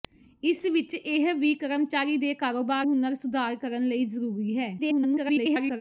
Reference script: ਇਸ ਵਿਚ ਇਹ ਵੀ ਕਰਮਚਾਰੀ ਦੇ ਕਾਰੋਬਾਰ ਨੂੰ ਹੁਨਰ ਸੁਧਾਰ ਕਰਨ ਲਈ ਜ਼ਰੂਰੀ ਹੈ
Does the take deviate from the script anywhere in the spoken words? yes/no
yes